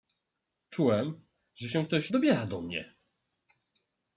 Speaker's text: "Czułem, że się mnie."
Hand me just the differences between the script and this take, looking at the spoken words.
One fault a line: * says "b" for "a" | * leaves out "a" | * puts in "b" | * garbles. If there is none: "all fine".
* puts in "ktoś dobiera do"